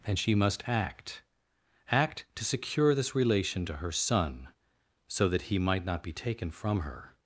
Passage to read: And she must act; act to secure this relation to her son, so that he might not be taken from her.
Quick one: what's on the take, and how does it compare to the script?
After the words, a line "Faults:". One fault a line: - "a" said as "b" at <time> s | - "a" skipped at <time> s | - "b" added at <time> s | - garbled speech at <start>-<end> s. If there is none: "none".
And she must act; act to secure this relation to her son, so that he might not be taken from her.
Faults:
none